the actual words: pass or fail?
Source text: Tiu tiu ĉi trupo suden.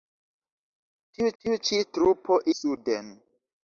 pass